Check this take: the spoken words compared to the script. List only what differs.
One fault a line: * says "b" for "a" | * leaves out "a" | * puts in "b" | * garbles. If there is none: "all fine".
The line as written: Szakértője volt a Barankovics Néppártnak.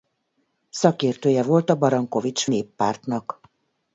all fine